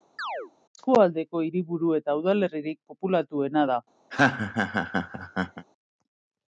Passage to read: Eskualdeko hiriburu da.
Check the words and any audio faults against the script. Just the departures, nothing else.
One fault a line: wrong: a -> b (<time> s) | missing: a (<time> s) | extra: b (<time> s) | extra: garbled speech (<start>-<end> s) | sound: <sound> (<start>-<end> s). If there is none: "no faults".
sound: chirp (0.2-0.5 s)
extra: eta udalerririk populatuena (2.0 s)
sound: laugh (4.1-5.7 s)